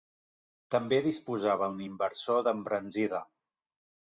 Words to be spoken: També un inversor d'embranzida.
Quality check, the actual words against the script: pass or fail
fail